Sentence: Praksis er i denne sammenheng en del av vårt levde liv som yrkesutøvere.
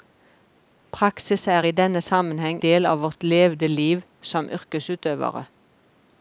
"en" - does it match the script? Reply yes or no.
no